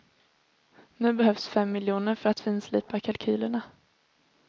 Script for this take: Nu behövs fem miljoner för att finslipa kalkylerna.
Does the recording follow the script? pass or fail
pass